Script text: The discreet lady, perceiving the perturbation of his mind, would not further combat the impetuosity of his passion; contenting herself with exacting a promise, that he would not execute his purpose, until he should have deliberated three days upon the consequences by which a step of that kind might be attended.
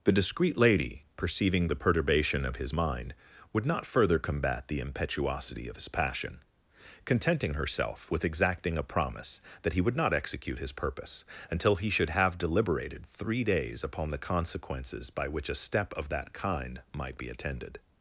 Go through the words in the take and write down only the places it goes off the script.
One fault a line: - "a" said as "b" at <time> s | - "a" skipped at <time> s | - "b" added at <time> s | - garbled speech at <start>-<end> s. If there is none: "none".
none